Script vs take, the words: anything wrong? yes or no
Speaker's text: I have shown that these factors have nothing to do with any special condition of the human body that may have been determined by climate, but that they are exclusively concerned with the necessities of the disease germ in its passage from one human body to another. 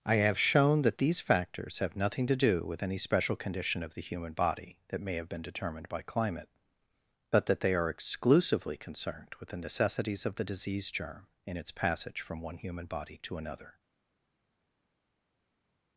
no